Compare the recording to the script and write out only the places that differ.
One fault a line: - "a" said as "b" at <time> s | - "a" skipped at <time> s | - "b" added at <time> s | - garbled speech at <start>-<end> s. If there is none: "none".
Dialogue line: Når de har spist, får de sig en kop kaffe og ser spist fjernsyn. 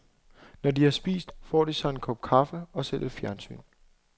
- "spist" said as "lidt" at 3.0 s